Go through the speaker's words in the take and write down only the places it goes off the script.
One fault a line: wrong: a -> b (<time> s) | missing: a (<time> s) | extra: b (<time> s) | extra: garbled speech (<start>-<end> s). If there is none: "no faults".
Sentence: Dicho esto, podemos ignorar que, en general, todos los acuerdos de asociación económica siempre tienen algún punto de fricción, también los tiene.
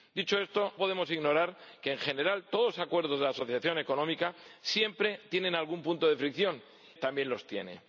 no faults